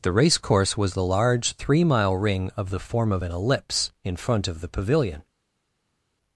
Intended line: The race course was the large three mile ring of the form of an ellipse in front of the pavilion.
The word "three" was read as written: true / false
true